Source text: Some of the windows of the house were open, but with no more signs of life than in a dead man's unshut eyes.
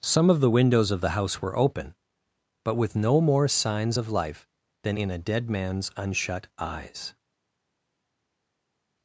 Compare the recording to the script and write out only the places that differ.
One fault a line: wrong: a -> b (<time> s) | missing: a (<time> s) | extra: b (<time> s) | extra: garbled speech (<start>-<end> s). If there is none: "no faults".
no faults